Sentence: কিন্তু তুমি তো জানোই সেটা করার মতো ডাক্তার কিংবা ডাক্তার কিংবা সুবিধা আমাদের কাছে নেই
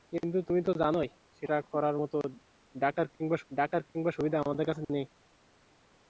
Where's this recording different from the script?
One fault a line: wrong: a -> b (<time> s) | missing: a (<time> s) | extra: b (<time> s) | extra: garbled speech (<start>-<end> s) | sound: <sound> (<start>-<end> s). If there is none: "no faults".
no faults